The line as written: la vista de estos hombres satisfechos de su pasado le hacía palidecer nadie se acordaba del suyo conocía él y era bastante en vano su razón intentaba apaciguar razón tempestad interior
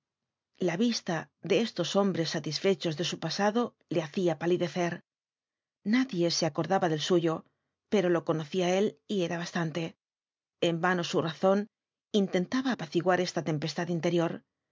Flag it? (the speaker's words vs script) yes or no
yes